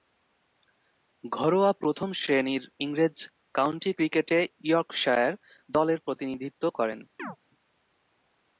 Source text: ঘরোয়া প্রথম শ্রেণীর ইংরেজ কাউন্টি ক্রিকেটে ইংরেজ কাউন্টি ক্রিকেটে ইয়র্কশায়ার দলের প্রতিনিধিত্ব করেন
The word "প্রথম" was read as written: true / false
true